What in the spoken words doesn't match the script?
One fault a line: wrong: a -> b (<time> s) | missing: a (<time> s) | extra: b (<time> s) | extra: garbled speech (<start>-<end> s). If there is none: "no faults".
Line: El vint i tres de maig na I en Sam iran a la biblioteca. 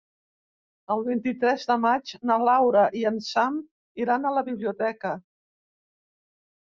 extra: Laura (2.5 s)